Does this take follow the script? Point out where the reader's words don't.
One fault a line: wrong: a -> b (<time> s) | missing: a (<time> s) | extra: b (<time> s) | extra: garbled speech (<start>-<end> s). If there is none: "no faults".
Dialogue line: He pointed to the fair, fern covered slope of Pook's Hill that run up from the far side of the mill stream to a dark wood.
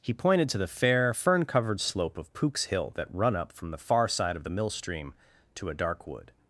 no faults